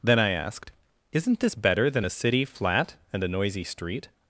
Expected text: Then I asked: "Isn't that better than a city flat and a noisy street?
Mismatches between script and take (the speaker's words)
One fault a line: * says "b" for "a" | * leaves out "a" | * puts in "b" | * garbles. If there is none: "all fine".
* says "this" for "that"